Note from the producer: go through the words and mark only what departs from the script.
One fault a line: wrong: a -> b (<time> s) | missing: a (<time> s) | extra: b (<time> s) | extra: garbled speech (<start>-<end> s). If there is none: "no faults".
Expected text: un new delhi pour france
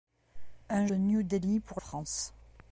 no faults